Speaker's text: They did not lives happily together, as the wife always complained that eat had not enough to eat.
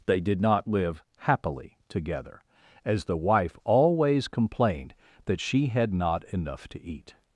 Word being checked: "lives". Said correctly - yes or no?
no